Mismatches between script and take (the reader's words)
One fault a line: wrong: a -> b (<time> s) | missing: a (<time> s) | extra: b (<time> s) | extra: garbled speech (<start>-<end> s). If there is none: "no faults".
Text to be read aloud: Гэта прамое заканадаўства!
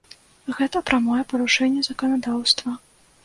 extra: парушэнне (1.3 s)